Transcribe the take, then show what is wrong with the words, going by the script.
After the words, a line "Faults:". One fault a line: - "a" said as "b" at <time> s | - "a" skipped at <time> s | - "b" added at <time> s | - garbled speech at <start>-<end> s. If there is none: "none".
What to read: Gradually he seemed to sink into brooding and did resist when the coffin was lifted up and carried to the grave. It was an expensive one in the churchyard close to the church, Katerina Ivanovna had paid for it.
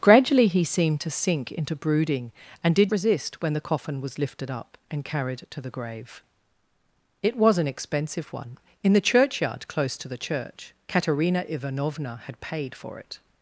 Gradually he seemed to sink into brooding and did resist when the coffin was lifted up and carried to the grave. It was an expensive one in the churchyard close to the church, Katerina Ivanovna had paid for it.
Faults:
none